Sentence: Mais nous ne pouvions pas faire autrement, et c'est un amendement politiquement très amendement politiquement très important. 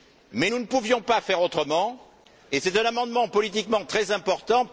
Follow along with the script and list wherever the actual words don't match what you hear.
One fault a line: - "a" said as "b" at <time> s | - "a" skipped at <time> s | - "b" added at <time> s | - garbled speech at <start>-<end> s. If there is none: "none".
- "amendement politiquement très" skipped at 4.1 s